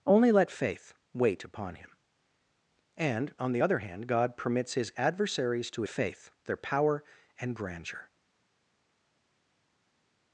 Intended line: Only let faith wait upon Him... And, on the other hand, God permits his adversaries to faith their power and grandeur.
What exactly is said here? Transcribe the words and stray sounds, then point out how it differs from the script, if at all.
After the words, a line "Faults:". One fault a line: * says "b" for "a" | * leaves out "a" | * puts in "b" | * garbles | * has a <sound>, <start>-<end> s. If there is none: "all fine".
Only let faith wait upon Him... And, on the other hand, God permits his adversaries to faith their power and grandeur.
Faults:
all fine